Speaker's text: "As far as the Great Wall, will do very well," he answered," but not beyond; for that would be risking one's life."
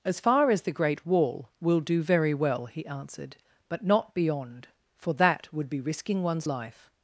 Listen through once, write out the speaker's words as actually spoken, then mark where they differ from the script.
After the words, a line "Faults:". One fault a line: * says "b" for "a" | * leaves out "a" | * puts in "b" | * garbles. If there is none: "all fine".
"As far as the Great Wall, will do very well," he answered," but not beyond; for that would be risking one's life."
Faults:
all fine